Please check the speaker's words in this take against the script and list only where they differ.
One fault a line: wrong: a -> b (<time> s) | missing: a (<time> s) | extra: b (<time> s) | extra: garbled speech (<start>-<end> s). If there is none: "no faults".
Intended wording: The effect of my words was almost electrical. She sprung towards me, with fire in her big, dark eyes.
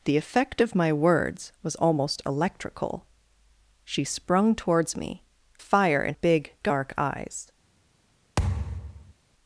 missing: with (5.2 s)
missing: her (6.2 s)